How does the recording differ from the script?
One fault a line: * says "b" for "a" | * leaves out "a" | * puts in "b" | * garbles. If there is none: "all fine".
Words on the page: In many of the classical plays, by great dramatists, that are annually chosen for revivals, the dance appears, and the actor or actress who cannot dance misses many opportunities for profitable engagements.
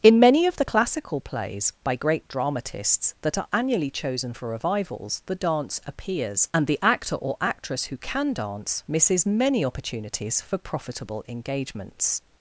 * says "can" for "cannot"